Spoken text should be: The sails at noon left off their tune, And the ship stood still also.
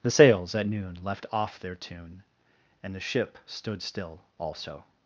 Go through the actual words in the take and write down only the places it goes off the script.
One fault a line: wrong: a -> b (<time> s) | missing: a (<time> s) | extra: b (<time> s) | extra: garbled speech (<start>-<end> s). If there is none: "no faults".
no faults